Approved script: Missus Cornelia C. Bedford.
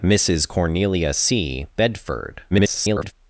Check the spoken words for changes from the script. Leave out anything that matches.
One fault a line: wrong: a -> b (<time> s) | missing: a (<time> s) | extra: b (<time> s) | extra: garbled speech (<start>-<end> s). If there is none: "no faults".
extra: garbled speech (2.5-3.1 s)